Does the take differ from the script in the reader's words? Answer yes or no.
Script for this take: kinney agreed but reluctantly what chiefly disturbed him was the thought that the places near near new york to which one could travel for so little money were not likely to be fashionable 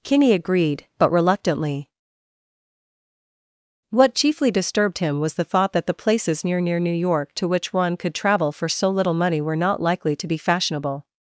no